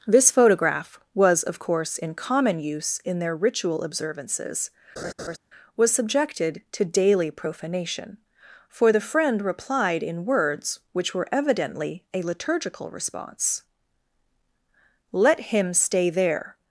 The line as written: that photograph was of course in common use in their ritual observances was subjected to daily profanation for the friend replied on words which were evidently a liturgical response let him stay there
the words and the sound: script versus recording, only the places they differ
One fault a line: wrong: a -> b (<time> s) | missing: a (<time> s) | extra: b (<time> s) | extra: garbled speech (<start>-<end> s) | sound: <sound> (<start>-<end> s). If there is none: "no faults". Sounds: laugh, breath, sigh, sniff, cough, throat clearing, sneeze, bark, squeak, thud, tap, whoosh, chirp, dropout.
wrong: that -> this (0.1 s)
sound: laugh (5.0-5.4 s)
wrong: on -> in (10.0 s)